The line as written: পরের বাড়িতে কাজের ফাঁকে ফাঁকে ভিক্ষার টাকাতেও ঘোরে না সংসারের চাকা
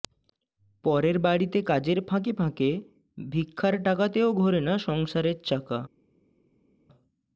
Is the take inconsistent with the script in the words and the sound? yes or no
no